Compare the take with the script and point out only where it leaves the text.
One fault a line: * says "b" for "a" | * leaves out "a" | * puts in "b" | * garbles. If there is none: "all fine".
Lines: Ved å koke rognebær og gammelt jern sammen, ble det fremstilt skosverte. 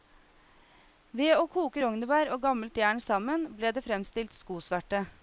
all fine